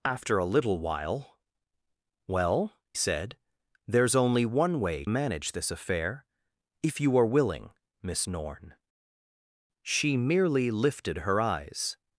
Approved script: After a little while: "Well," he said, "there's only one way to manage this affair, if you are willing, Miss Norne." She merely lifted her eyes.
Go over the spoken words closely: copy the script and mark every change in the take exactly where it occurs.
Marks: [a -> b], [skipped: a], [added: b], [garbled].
After a little while: "Well," [skipped: he] said, "there's only one way [skipped: to] manage this affair, if you are willing, Miss Norne." She merely lifted her eyes.